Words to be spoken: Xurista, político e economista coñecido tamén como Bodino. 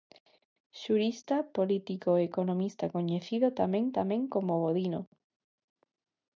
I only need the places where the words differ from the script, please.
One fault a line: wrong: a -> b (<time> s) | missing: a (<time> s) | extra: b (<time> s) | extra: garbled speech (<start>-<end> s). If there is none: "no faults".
extra: tamén (4.0 s)